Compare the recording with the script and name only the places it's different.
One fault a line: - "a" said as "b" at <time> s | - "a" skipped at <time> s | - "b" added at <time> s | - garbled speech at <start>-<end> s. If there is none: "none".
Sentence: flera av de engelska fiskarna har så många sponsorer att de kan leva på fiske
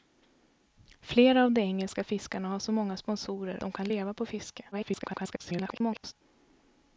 - "att" skipped at 3.6 s
- garbled speech at 4.7-6.1 s